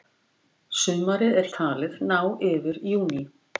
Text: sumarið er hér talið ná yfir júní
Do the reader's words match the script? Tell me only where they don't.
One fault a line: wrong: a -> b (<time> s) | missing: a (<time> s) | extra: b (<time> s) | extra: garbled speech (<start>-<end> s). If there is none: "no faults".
missing: hér (1.5 s)